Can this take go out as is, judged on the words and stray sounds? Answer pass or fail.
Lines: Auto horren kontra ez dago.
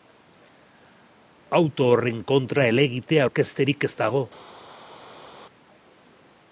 fail